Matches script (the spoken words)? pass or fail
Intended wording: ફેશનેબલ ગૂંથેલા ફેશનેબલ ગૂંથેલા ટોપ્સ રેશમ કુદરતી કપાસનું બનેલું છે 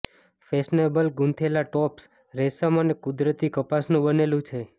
fail